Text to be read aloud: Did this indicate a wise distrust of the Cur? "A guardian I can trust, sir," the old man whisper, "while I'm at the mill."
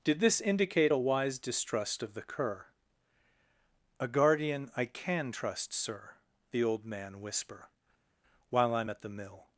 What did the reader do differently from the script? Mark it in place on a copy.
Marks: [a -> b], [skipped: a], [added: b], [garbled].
Did this indicate a wise distrust of the Cur? "A guardian I can trust, sir," the old man whisper, "while I'm at the mill."